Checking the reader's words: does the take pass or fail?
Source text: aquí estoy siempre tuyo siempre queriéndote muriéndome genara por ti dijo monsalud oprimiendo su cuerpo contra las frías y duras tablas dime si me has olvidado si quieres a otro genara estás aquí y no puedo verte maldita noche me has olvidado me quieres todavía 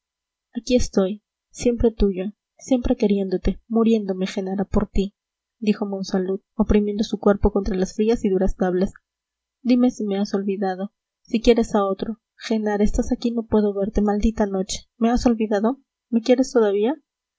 pass